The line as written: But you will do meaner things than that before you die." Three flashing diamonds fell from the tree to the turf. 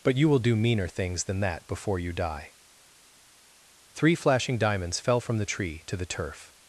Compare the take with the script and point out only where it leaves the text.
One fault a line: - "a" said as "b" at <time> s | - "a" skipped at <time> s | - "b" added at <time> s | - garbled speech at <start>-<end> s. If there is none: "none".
none